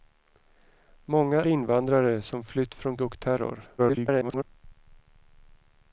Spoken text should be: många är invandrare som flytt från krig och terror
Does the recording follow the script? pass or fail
fail